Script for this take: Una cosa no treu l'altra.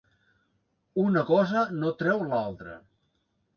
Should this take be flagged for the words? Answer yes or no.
no